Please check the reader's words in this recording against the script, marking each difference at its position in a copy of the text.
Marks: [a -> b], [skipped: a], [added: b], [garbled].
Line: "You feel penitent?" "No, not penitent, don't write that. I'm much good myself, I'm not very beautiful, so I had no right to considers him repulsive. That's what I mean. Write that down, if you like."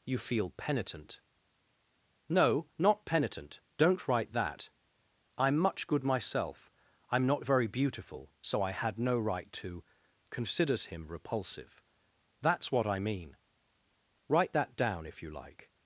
"You feel penitent?" "No, not penitent, don't write that. I'm much good myself, I'm not very beautiful, so I had no right to considers him repulsive. That's what I mean. Write that down, if you like."